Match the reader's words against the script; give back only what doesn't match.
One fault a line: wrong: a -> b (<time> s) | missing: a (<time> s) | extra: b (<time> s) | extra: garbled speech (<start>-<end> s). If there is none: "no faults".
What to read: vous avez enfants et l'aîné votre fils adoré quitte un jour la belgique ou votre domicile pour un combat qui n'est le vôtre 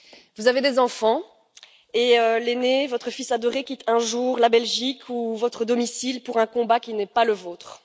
extra: des (0.6 s)
extra: pas (7.0 s)